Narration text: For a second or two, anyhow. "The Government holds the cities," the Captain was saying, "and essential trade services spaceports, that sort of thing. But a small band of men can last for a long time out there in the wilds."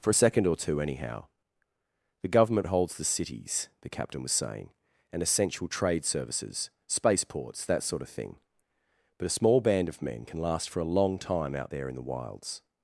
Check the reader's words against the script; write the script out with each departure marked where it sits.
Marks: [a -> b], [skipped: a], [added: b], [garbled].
For a second or two, anyhow. "The Government holds the cities," the Captain was saying, "and essential trade services spaceports, that sort of thing. But a small band of men can last for a long time out there in the wilds."